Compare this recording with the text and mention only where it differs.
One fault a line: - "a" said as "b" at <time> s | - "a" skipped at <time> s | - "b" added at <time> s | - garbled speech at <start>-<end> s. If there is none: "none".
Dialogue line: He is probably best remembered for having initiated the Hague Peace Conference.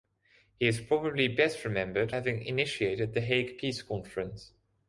- "for" skipped at 2.1 s